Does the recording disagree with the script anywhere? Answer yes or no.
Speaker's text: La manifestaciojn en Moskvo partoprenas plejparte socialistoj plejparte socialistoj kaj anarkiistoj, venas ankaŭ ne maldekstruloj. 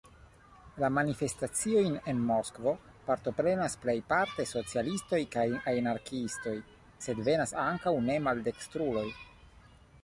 yes